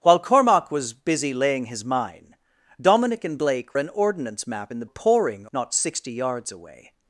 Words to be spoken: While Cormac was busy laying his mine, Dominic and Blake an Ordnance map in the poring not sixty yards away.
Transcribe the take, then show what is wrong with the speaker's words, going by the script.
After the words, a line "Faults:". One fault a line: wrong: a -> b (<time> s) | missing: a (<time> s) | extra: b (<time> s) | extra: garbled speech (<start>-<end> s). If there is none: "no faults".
While Cormac was busy laying his mine, Dominic and Blake an Ordnance map in the poring not sixty yards away.
Faults:
no faults